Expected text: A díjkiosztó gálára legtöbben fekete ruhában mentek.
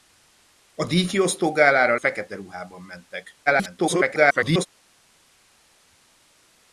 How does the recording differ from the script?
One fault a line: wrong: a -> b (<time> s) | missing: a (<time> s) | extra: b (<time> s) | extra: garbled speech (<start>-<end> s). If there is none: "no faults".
missing: legtöbben (1.9 s)
extra: garbled speech (3.5-4.7 s)